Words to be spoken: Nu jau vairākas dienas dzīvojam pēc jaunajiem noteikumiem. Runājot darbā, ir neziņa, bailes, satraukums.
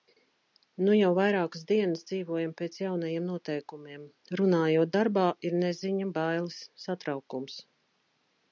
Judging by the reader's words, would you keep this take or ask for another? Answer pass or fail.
pass